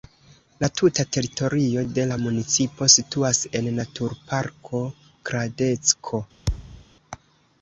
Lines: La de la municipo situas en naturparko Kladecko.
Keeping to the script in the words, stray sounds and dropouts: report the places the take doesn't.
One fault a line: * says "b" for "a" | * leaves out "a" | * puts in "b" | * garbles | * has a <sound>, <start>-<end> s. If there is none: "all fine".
* puts in "tuta teritorio"
* has a thud, 6.5-6.8 s